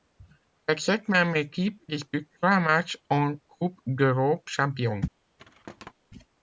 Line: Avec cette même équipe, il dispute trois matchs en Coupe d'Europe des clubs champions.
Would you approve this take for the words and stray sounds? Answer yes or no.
no